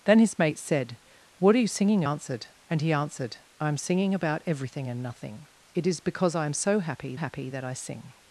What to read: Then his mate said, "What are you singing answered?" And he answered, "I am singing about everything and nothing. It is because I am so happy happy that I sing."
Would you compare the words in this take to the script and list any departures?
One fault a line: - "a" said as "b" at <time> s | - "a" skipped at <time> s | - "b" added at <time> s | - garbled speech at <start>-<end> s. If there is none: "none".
none